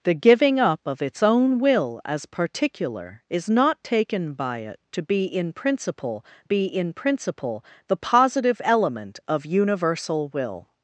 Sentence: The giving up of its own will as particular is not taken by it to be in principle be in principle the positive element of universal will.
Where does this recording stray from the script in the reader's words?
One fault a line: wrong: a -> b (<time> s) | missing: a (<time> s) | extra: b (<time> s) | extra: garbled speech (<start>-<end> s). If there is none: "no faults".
no faults